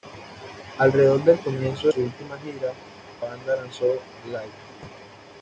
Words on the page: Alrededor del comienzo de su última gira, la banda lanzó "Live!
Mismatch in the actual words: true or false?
true